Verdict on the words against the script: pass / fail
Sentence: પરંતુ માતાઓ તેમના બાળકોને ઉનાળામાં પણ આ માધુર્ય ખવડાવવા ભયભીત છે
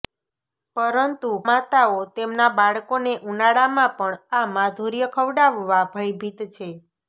pass